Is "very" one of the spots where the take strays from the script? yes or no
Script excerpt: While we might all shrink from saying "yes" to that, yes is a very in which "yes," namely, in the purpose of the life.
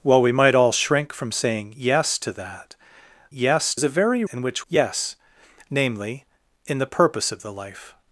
no